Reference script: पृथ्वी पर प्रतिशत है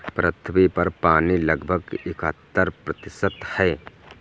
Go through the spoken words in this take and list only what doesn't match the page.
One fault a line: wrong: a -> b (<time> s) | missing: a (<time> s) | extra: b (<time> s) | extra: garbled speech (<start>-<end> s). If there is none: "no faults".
extra: पानी लगभग इकहत्तर (1.0 s)